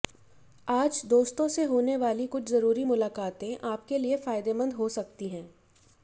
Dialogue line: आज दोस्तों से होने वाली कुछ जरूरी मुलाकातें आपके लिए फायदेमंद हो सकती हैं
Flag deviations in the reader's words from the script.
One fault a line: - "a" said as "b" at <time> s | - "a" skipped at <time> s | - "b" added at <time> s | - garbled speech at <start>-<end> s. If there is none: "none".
none